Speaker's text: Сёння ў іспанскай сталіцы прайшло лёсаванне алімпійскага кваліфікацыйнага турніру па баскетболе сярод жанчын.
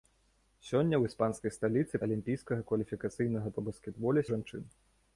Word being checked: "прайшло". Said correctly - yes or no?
no